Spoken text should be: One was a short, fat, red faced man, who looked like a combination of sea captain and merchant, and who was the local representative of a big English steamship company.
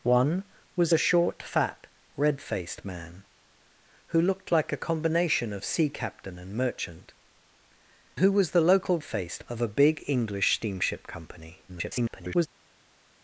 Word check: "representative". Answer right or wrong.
wrong